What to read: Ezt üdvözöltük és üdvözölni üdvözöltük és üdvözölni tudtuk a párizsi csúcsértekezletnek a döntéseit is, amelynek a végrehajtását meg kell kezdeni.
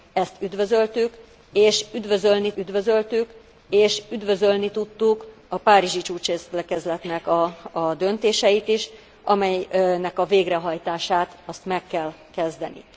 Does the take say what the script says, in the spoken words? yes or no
yes